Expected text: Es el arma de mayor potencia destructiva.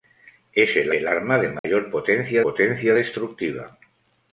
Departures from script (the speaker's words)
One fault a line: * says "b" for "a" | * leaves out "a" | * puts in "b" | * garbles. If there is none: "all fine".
* puts in "el"
* puts in "potencia"